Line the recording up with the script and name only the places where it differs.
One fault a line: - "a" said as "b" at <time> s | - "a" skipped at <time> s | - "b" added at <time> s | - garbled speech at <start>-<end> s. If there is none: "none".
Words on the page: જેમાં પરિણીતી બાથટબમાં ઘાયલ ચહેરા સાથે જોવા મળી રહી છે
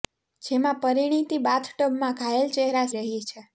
- "સાથે જોવા મળી" skipped at 2.9 s